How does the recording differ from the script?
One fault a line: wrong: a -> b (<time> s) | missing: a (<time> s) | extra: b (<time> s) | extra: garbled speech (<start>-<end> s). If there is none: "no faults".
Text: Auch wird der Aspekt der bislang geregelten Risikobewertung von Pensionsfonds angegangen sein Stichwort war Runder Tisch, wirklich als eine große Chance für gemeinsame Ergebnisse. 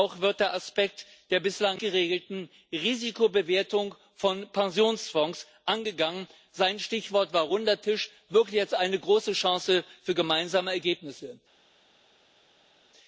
no faults